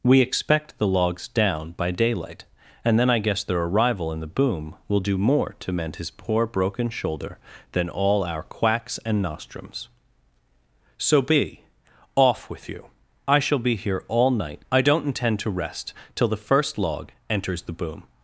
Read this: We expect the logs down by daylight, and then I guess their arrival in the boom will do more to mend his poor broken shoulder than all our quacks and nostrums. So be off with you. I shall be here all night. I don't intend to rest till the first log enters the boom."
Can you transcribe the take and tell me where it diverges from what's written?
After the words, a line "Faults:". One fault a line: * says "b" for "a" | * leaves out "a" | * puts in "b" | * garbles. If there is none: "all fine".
We expect the logs down by daylight, and then I guess their arrival in the boom will do more to mend his poor broken shoulder than all our quacks and nostrums. So be off with you. I shall be here all night. I don't intend to rest till the first log enters the boom."
Faults:
all fine